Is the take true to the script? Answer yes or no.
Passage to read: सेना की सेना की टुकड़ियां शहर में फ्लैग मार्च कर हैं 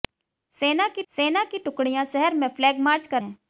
yes